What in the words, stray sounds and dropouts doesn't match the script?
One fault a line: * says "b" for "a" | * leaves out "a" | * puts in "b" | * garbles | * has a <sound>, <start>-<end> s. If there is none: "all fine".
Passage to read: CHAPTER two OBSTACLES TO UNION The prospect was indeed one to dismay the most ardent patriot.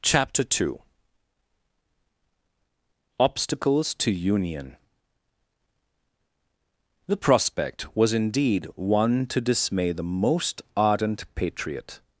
all fine